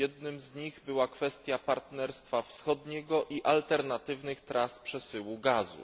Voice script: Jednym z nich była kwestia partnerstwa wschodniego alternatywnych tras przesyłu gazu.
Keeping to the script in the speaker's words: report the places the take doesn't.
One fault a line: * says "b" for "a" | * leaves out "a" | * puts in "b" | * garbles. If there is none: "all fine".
* puts in "i"